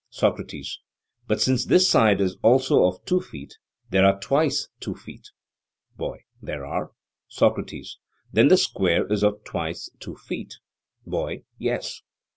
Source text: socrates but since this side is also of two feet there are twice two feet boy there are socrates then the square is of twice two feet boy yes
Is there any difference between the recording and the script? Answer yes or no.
no